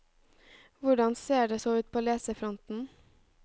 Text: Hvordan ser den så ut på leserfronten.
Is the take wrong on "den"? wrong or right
wrong